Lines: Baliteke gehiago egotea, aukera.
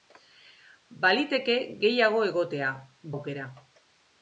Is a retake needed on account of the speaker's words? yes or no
no